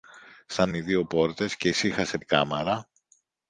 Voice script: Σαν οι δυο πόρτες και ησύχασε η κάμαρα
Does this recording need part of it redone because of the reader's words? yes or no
no